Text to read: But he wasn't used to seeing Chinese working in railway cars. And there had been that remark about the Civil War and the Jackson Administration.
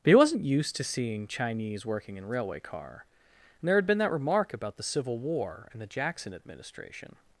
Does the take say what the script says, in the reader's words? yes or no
no